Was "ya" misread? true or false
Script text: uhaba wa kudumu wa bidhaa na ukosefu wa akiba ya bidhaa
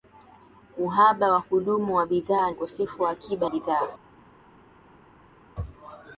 true